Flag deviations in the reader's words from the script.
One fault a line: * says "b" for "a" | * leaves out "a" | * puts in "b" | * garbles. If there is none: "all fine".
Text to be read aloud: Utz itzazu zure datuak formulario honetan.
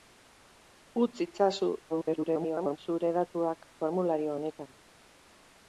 * garbles